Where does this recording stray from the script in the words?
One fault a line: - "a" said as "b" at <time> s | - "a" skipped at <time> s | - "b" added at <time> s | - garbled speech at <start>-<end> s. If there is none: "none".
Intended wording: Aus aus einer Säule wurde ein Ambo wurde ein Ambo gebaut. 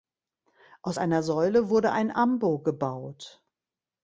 - "aus" skipped at 1.0 s
- "wurde ein Ambo" skipped at 2.6 s